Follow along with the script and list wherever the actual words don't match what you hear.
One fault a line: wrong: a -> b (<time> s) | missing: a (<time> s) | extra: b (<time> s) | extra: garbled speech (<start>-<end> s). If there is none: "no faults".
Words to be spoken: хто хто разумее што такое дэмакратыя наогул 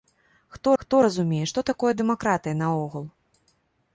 no faults